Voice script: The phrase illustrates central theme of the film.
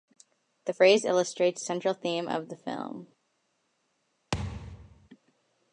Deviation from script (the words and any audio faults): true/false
true